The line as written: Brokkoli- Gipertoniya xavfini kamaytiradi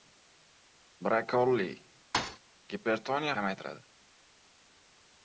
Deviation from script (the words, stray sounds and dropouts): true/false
true